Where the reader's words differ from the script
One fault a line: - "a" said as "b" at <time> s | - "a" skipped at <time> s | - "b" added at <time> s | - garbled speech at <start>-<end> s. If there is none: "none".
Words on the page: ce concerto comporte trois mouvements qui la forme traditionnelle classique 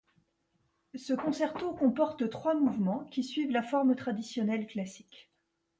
- "suivent" added at 3.2 s